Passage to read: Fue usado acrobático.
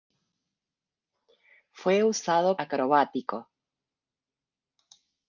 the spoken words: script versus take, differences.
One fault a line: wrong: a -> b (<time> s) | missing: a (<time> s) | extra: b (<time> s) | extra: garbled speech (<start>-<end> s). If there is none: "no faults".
no faults